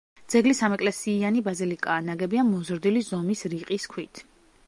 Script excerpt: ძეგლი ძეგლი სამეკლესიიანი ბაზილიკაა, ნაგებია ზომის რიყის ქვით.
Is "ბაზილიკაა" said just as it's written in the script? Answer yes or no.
yes